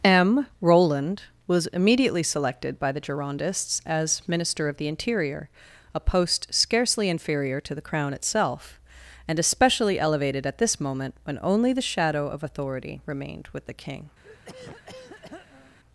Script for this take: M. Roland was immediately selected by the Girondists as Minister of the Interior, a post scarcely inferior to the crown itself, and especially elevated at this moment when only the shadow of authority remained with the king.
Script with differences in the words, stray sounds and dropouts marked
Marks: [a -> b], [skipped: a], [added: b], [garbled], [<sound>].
M. Roland was immediately selected by the Girondists as Minister of the Interior, a post scarcely inferior to the crown itself, and especially elevated at this moment when only the shadow of authority remained with the king. [throat clearing]